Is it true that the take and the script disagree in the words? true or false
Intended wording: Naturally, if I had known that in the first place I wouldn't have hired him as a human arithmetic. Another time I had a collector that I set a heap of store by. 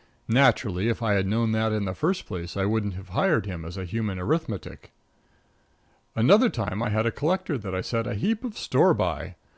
false